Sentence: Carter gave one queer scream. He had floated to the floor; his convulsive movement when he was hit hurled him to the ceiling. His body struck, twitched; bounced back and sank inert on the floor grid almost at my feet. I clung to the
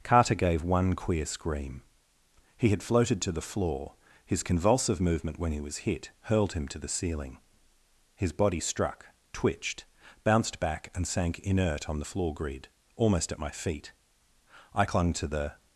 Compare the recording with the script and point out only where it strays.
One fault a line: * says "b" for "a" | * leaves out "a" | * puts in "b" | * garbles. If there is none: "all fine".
all fine